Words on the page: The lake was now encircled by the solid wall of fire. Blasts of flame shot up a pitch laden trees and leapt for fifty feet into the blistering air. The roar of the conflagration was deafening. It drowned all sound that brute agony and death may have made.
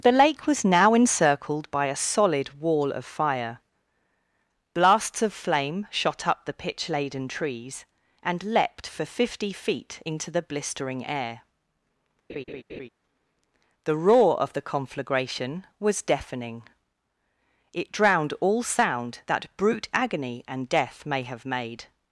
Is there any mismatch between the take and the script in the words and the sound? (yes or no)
yes